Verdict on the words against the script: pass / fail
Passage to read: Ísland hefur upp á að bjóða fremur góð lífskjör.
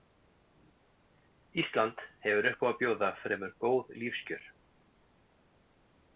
pass